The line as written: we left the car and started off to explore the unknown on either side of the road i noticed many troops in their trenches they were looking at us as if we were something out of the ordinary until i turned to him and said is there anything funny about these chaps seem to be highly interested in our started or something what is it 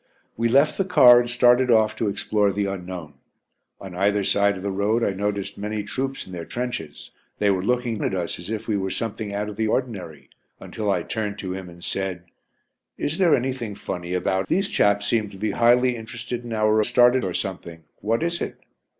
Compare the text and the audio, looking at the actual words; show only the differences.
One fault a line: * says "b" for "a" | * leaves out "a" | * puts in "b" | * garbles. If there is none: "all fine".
all fine